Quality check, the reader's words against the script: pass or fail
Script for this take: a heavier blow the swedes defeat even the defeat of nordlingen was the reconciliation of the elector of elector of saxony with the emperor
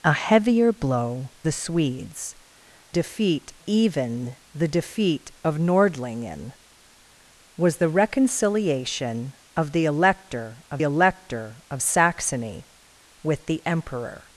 pass